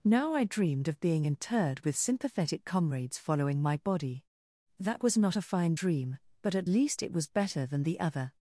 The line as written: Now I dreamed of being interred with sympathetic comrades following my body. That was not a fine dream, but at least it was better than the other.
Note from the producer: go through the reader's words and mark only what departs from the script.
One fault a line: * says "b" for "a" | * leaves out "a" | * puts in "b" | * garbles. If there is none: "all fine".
all fine